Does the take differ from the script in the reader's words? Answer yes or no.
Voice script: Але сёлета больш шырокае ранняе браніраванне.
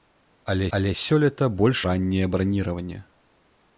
yes